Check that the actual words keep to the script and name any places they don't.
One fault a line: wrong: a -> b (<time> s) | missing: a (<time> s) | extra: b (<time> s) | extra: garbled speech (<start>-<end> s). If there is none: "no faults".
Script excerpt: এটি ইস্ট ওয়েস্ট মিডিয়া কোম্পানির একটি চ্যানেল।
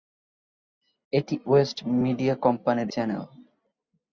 missing: ইস্ট (1.4 s)
missing: একটি (2.9 s)